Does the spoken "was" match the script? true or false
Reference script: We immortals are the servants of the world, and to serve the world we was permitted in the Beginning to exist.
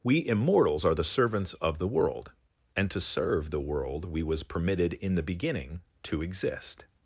true